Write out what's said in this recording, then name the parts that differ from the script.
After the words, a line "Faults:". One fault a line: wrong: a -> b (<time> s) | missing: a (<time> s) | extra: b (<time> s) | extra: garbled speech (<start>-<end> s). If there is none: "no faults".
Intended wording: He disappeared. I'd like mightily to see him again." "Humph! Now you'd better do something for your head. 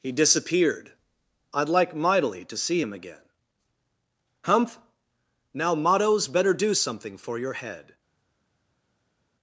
He disappeared. I'd like mightily to see him again." "Humph! Now mottos better do something for your head.
Faults:
wrong: you'd -> mottos (5.8 s)